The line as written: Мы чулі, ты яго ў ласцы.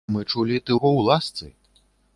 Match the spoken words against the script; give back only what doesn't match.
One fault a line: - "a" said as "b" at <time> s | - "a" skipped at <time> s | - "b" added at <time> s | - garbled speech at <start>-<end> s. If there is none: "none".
none